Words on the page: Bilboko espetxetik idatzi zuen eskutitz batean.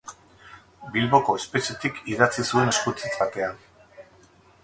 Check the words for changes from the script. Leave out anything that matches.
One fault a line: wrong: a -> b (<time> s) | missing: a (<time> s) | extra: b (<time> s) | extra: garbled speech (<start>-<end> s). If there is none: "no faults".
no faults